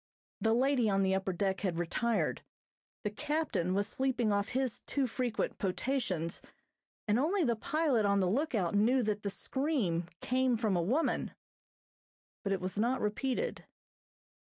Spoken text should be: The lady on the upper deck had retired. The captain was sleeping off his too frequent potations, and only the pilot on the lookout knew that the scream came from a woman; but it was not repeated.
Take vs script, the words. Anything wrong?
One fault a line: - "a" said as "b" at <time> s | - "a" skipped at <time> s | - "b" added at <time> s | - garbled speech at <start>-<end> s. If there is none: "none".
none